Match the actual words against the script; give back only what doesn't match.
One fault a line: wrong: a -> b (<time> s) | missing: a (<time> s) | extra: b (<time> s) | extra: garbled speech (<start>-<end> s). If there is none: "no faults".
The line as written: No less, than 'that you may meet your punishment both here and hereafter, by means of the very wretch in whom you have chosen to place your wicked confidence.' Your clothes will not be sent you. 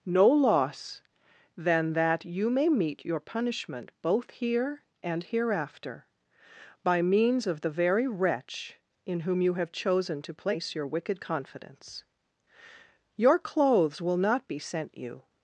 wrong: less -> loss (0.3 s)